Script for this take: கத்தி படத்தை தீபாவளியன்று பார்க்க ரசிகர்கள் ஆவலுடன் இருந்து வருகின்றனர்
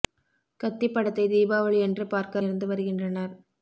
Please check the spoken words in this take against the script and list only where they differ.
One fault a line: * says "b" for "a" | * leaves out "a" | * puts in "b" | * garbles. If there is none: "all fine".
* leaves out "ரசிகர்கள் ஆவலுடன்"